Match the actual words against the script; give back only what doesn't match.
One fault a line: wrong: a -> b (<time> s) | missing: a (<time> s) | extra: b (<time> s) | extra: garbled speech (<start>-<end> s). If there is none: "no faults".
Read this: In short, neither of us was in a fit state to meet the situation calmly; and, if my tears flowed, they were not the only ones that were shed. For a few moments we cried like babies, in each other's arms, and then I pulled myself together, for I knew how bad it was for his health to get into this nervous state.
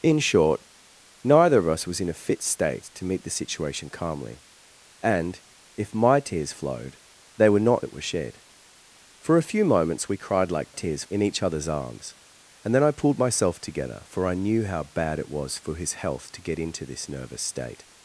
missing: the only ones (7.8 s)
wrong: babies -> tears (10.7 s)